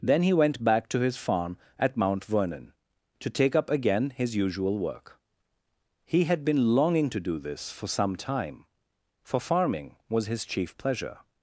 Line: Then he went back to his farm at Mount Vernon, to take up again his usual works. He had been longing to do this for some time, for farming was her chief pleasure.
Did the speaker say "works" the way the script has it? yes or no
no